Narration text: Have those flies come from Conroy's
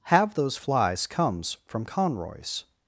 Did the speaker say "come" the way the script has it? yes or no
no